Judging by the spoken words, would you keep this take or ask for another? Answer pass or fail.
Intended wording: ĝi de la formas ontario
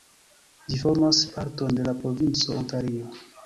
fail